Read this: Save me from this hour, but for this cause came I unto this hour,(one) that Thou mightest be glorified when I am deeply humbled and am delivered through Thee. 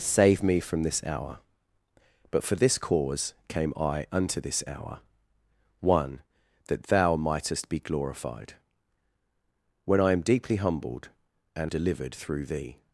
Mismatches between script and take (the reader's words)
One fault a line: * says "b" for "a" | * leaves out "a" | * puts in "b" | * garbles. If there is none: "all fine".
* leaves out "am"